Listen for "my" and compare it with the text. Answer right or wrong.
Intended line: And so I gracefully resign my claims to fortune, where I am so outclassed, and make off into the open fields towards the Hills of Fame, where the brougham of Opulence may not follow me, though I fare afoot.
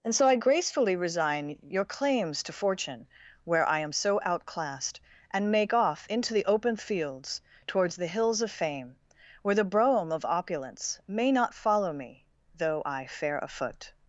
wrong